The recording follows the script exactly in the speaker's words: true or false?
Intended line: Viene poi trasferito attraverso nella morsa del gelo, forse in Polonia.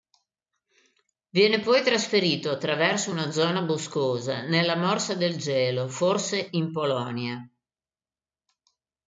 false